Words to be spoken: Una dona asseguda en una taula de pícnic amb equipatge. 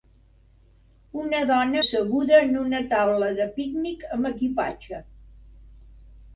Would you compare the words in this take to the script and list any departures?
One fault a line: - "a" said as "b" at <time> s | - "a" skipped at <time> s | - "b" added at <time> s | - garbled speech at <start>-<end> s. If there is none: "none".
none